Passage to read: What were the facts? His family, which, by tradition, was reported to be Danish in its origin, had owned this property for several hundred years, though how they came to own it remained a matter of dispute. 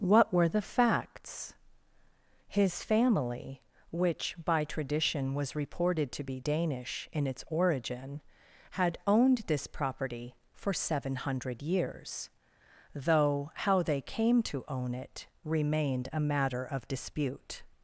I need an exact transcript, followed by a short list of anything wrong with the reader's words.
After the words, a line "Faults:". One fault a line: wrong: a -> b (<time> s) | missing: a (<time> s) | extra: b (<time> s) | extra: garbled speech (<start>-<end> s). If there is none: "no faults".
What were the facts? His family, which, by tradition, was reported to be Danish in its origin, had owned this property for seven hundred years, though how they came to own it remained a matter of dispute.
Faults:
wrong: several -> seven (10.7 s)